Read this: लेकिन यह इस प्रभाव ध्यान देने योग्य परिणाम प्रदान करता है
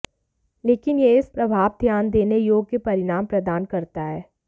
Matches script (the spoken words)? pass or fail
pass